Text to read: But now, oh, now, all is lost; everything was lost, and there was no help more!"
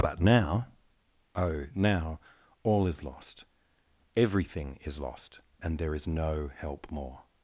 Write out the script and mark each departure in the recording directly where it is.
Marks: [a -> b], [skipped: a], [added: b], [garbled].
But now, oh, now, all is lost; everything [was -> is] lost, and there [was -> is] no help more!"